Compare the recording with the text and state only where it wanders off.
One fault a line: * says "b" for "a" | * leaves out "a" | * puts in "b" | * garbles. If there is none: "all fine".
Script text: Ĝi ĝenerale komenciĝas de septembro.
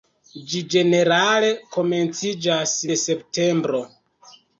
all fine